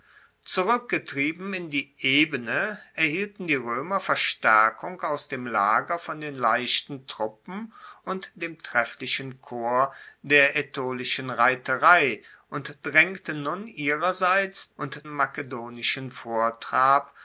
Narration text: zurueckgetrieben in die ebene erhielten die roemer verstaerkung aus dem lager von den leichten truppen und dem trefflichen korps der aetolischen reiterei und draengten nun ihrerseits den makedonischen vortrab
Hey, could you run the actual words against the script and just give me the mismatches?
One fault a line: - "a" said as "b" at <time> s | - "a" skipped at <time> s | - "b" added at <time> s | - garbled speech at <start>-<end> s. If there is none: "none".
- "den" said as "und" at 14.8 s